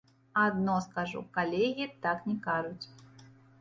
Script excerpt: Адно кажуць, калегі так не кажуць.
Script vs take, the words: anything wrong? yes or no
yes